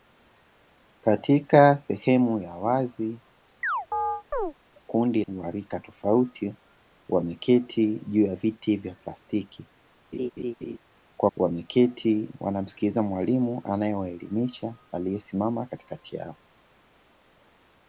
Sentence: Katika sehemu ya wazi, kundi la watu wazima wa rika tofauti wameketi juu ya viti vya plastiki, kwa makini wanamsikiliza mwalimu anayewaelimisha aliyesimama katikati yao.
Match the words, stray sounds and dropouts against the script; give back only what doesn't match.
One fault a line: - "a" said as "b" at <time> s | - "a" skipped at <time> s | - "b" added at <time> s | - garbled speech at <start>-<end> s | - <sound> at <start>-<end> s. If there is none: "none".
- chirp at 3.6-4.5 s
- "la watu wazima" skipped at 5.2 s
- laugh at 10.1-10.8 s
- "makini" said as "wameketi" at 11.4 s